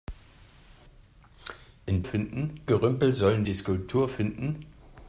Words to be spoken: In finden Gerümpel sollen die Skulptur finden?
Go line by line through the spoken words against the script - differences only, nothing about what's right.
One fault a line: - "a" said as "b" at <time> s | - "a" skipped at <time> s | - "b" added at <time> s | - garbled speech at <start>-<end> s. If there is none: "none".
none